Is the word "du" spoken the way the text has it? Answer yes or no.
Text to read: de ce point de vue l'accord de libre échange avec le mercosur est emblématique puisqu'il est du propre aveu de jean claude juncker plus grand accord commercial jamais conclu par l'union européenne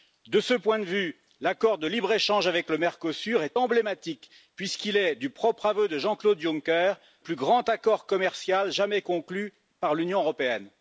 yes